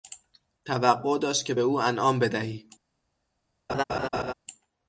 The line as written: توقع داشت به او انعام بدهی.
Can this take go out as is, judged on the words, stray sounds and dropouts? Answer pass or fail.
fail